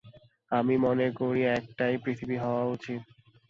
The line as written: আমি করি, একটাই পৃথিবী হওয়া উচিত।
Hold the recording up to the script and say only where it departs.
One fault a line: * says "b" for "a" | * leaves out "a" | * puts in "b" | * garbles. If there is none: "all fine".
* puts in "মনে"